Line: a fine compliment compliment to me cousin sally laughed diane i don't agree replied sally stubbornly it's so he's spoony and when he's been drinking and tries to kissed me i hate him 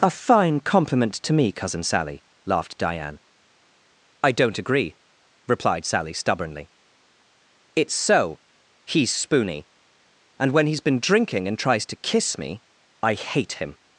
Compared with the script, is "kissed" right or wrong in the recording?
wrong